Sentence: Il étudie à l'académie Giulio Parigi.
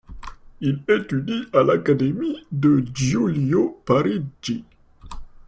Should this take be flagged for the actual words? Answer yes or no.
yes